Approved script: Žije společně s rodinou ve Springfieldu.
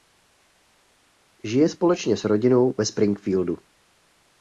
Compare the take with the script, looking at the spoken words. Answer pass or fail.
pass